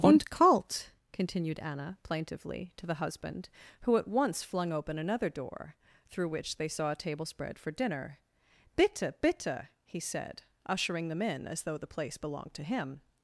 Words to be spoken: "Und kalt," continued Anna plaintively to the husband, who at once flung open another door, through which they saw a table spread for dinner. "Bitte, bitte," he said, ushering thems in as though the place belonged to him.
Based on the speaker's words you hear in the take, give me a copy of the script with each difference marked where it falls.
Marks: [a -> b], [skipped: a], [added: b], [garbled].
"Und kalt," continued Anna plaintively to the husband, who at once flung open another door, through which they saw a table spread for dinner. "Bitte, bitte," he said, ushering [thems -> them] in as though the place belonged to him.